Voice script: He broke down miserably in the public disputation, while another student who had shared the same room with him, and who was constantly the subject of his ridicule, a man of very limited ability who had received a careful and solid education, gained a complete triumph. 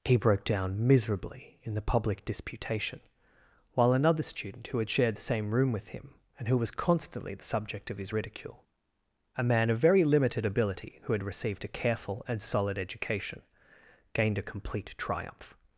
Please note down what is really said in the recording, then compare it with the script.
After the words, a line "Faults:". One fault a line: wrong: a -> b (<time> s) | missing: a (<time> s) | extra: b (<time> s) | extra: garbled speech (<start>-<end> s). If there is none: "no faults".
He broke down miserably in the public disputation, while another student who had shared the same room with him, and who was constantly the subject of his ridicule, a man of very limited ability who had received a careful and solid education, gained a complete triumph.
Faults:
no faults